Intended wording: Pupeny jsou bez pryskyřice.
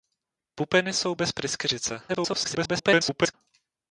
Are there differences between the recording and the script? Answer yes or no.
yes